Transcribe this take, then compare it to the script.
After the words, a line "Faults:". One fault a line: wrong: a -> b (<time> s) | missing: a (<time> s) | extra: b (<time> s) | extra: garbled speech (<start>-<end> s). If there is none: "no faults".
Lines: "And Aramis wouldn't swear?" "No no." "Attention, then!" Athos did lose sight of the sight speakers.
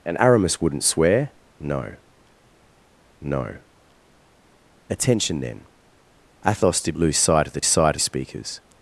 "And Aramis wouldn't swear?" "No no." "Attention, then!" Athos did lose sight of the sight speakers.
Faults:
no faults